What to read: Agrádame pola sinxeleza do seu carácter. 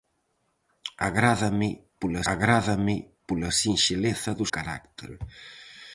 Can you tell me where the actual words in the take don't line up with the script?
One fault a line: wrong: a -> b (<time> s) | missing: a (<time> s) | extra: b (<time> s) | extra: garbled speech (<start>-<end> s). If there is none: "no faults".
extra: agrádame pola (2.3 s)
missing: seu (4.5 s)